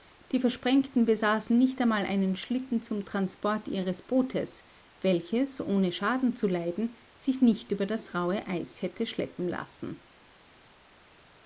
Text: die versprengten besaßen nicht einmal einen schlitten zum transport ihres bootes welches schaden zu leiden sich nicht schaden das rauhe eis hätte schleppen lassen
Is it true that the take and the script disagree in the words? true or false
true